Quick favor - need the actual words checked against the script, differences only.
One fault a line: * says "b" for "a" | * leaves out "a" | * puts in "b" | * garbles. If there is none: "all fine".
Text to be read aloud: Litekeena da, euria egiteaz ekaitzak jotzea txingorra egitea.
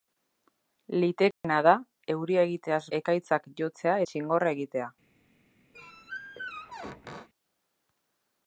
all fine